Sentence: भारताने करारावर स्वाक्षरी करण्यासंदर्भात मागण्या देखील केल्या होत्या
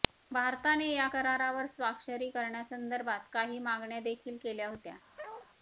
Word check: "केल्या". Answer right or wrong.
right